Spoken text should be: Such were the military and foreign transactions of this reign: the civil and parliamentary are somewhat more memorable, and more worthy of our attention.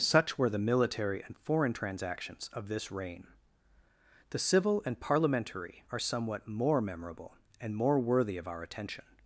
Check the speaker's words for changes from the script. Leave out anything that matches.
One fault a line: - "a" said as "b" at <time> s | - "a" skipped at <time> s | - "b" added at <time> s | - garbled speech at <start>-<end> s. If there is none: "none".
none